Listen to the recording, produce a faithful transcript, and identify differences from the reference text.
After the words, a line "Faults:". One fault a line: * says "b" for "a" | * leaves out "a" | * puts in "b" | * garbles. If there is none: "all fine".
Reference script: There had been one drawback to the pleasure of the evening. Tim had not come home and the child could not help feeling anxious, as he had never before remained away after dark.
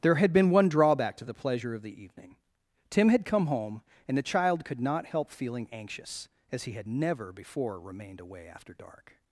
There had been one drawback to the pleasure of the evening. Tim had come home and the child could not help feeling anxious, as he had never before remained away after dark.
Faults:
* leaves out "not"